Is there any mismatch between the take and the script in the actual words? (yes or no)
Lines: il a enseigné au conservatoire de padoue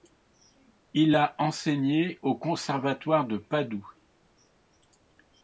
no